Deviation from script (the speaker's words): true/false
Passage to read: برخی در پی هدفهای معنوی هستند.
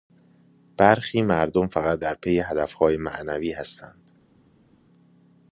true